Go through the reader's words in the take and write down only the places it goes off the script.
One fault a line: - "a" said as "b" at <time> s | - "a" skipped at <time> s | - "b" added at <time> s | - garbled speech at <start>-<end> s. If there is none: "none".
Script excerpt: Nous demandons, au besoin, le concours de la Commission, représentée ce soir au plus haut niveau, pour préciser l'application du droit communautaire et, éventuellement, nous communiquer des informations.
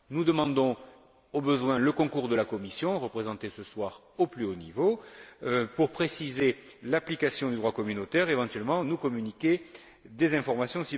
none